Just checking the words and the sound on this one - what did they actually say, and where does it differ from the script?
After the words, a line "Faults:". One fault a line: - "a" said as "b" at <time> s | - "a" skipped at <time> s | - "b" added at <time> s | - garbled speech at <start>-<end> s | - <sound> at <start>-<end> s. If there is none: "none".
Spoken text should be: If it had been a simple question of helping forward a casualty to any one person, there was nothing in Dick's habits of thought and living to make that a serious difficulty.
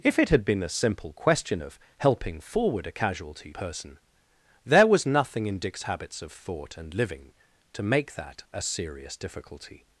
If it had been a simple question of helping forward a casualty person, there was nothing in Dick's habits of thought and living to make that a serious difficulty.
Faults:
- "to any one" skipped at 3.5 s